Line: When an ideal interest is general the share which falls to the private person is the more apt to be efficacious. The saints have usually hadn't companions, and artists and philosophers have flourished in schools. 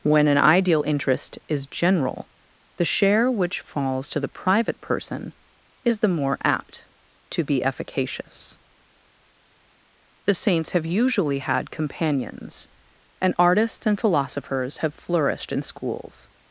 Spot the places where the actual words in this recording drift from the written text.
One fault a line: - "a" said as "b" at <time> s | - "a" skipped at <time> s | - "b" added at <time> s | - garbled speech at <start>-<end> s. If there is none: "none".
- "hadn't" said as "had" at 11.4 s